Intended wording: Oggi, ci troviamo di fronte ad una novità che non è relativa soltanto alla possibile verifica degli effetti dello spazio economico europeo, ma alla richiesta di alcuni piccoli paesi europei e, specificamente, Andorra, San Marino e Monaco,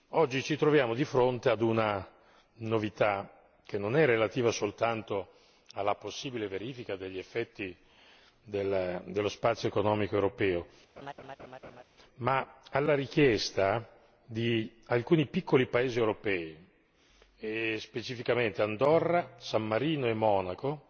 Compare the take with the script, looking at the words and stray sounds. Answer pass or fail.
fail